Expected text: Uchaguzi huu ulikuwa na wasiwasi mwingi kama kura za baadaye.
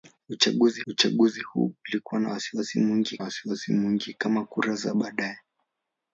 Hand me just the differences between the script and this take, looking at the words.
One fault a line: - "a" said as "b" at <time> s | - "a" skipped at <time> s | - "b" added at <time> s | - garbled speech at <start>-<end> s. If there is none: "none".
- "uchaguzi" added at 0.9 s
- "wasiwasi mwingi" added at 3.2 s